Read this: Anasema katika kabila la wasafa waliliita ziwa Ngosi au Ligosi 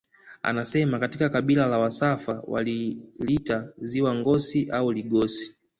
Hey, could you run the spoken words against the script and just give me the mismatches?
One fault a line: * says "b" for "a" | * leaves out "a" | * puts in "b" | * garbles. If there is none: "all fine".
all fine